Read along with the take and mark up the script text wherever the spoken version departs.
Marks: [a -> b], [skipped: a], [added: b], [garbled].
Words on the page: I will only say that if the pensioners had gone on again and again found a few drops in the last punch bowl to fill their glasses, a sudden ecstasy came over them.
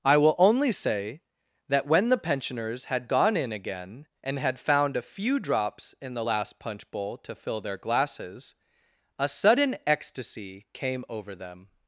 I will only say that [if -> when] the pensioners had gone [on -> in] again and [again -> had] found a few drops in the last punch bowl to fill their glasses, a sudden ecstasy came over them.